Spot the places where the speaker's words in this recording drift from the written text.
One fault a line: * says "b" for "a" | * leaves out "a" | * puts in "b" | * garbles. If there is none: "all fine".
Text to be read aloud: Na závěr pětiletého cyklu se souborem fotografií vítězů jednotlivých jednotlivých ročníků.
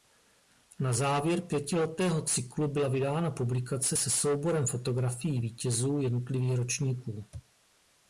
* puts in "byla vydána publikace"
* leaves out "jednotlivých"